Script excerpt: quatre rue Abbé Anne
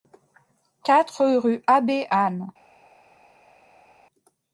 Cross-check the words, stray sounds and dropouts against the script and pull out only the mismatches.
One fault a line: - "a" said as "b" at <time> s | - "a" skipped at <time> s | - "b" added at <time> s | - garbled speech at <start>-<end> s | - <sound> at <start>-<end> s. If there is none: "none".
none